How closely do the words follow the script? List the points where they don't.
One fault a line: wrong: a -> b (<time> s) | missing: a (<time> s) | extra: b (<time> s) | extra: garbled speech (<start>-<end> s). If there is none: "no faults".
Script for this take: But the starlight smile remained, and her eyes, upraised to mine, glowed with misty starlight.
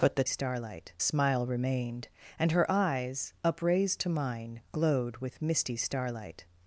no faults